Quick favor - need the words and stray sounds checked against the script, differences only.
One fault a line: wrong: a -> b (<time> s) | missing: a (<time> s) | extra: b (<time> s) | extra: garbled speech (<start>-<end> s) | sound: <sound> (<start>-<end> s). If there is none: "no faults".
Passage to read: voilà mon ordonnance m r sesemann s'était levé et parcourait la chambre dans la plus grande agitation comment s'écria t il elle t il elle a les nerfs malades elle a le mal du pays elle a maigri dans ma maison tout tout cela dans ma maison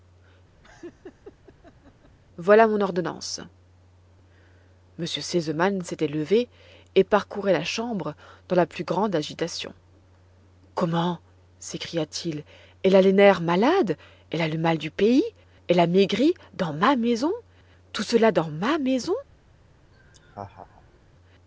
sound: laugh (0.6-2.2 s)
missing: t il elle (13.0 s)
missing: tout (18.0 s)
sound: laugh (19.9-21.0 s)